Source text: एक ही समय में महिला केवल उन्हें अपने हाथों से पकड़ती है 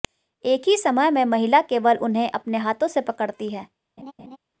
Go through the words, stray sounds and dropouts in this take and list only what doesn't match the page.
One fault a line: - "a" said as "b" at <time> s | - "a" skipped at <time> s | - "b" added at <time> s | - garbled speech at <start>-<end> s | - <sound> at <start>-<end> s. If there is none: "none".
- laugh at 4.0-4.4 s